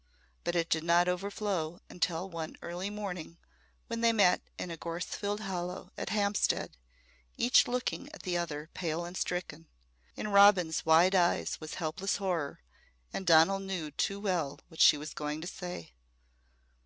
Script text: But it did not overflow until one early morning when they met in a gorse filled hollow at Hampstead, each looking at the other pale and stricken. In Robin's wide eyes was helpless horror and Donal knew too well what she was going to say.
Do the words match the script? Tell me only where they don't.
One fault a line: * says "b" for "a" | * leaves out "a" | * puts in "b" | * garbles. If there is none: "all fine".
all fine